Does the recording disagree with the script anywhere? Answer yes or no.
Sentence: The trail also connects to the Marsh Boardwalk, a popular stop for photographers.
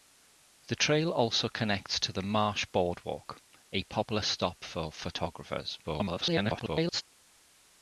yes